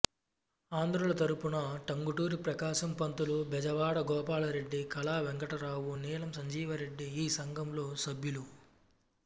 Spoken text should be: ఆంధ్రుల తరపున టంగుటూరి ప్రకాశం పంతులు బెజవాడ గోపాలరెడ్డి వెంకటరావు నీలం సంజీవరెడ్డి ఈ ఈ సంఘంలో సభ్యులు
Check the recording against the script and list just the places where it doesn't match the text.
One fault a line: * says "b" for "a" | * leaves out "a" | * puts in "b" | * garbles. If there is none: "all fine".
* puts in "కళా"
* leaves out "ఈ"